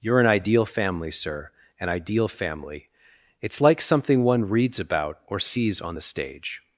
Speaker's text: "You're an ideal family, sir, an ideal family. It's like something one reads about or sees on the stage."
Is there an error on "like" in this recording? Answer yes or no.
no